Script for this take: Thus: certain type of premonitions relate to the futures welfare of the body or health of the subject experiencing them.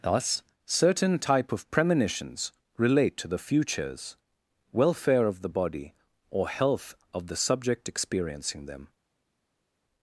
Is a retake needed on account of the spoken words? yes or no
no